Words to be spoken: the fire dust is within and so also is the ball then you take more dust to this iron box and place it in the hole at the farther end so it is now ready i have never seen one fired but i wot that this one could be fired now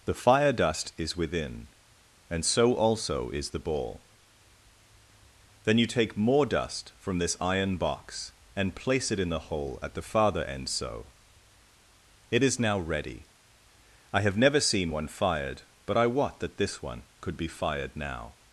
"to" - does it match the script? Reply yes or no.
no